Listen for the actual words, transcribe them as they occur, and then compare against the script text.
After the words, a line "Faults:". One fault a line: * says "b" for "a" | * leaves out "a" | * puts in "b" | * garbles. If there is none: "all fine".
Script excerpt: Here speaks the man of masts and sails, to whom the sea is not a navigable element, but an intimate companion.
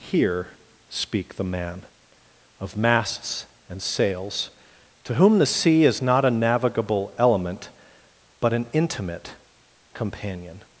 Here speak the man of masts and sails, to whom the sea is not a navigable element, but an intimate companion.
Faults:
* says "speak" for "speaks"